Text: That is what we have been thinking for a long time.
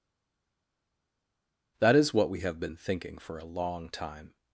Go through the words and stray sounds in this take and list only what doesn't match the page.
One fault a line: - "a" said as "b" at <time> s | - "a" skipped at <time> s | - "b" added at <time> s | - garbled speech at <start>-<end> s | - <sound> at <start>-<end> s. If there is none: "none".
none